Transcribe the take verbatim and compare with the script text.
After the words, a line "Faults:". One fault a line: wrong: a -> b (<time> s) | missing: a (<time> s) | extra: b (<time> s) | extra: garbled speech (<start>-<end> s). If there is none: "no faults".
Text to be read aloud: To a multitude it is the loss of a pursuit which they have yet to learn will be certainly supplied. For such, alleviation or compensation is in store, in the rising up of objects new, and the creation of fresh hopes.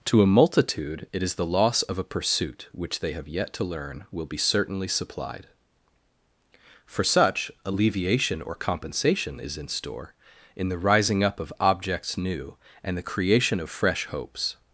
To a multitude it is the loss of a pursuit which they have yet to learn will be certainly supplied. For such, alleviation or compensation is in store, in the rising up of objects new, and the creation of fresh hopes.
Faults:
no faults